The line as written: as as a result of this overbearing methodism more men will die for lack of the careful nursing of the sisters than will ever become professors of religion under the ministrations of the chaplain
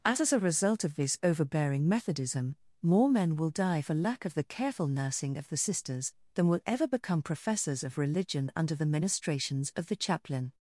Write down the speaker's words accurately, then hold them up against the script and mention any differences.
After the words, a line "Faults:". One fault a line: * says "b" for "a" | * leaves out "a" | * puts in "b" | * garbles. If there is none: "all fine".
as as a result of this overbearing methodism more men will die for lack of the careful nursing of the sisters than will ever become professors of religion under the ministrations of the chaplain
Faults:
all fine